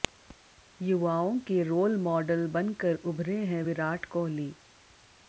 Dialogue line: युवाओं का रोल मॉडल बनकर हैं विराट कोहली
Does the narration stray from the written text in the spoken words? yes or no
yes